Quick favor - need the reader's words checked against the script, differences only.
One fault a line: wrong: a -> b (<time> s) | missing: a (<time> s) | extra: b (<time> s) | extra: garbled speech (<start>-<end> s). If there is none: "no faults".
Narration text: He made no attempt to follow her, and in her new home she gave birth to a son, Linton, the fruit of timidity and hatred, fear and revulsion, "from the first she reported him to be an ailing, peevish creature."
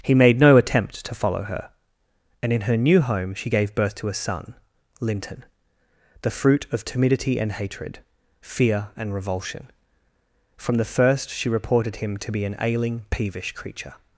no faults